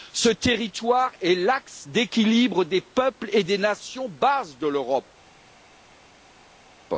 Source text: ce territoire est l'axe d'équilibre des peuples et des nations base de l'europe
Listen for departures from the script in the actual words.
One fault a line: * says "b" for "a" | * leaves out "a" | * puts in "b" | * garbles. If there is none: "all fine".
all fine